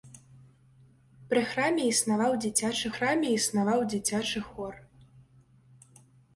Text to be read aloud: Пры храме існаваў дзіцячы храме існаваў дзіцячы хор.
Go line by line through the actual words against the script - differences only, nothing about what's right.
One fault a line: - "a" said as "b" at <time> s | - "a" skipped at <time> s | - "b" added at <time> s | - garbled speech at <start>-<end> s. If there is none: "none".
none